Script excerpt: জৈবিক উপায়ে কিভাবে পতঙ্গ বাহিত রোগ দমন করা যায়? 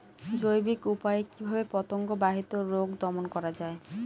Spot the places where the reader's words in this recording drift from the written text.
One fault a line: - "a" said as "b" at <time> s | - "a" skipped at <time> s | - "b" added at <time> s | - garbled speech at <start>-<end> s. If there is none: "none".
none